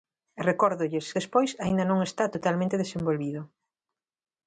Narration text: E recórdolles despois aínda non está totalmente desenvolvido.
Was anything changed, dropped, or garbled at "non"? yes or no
no